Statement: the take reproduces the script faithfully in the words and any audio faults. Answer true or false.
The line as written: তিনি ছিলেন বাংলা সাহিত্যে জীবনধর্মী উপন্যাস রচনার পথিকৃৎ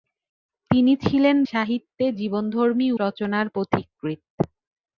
false